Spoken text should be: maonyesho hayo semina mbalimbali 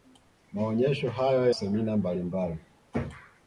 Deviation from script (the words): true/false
false